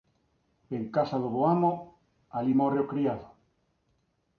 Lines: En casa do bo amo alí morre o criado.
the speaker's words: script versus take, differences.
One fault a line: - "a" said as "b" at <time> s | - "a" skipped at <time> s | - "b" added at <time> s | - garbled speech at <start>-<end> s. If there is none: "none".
none